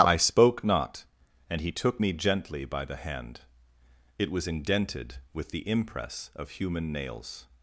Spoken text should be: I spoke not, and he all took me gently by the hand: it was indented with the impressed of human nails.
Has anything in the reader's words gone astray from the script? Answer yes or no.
yes